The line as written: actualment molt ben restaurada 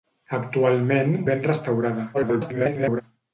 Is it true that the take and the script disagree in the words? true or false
true